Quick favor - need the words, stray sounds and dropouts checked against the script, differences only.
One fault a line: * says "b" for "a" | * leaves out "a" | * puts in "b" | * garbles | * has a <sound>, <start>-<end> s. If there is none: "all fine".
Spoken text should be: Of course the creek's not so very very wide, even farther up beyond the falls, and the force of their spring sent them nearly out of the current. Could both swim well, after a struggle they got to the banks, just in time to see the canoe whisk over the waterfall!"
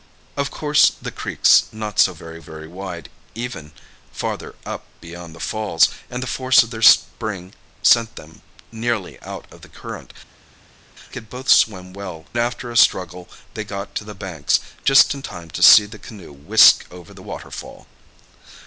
all fine